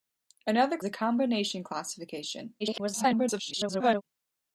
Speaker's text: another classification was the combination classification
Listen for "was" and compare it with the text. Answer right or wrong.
wrong